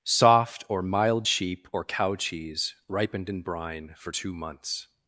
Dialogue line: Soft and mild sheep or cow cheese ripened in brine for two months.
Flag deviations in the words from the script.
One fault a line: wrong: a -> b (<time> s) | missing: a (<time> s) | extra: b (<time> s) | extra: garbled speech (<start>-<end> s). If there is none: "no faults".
wrong: and -> or (0.7 s)